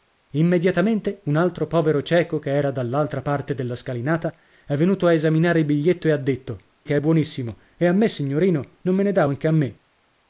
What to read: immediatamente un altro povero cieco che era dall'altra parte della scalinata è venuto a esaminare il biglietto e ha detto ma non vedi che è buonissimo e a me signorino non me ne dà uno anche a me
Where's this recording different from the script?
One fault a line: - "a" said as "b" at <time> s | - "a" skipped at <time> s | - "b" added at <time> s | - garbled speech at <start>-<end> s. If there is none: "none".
- "ma non vedi" skipped at 6.6 s
- "uno" skipped at 9.3 s